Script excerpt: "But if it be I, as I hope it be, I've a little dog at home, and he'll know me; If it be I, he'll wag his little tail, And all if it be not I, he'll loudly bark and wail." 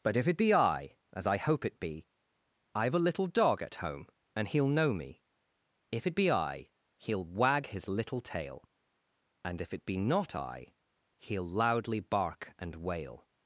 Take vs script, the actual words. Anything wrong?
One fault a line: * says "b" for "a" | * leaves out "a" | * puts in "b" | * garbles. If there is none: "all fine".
* leaves out "all"